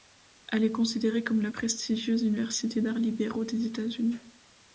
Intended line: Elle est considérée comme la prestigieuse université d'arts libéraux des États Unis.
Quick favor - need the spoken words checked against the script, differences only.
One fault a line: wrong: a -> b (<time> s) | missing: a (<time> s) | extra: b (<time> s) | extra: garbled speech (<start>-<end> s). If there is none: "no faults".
no faults